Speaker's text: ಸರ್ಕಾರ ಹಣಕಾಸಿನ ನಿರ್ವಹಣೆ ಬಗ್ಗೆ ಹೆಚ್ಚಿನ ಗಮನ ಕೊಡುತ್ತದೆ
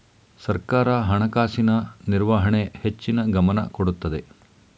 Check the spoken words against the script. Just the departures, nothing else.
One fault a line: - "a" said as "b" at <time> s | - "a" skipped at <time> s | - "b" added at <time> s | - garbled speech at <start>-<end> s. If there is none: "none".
- "ಬಗ್ಗೆ" skipped at 2.7 s